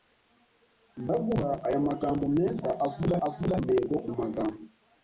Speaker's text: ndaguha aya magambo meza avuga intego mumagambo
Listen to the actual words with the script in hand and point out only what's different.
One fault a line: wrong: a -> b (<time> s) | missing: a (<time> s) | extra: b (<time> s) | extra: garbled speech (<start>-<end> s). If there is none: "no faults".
extra: avuga (3.3 s)